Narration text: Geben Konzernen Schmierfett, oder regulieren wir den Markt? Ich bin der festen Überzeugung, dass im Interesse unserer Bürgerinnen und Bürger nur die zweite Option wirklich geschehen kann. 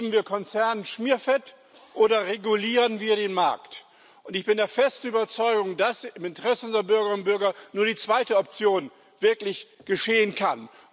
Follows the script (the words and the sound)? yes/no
no